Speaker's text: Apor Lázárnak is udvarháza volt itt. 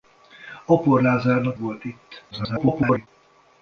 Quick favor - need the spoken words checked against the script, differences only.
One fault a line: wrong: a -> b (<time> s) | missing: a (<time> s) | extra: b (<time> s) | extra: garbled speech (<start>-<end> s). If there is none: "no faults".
missing: is udvarháza (1.6 s)
extra: garbled speech (2.3-3.1 s)